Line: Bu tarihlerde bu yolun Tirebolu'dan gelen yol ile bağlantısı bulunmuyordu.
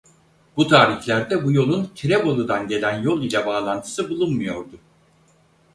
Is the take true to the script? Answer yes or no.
yes